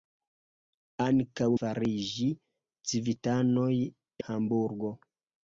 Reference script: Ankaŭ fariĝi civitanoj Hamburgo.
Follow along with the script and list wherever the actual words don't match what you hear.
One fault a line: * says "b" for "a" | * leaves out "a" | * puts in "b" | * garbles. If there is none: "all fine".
all fine